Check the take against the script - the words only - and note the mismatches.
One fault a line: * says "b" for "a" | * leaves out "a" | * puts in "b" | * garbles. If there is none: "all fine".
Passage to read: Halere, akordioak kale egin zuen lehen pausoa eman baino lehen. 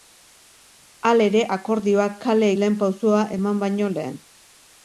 * leaves out "egin zuen"